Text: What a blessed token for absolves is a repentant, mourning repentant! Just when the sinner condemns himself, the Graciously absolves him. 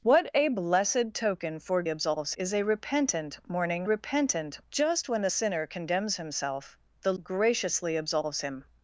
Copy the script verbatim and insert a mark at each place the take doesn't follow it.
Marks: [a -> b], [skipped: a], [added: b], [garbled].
What a blessed token for absolves is a repentant, mourning repentant! Just when the sinner condemns himself, the Graciously absolves him.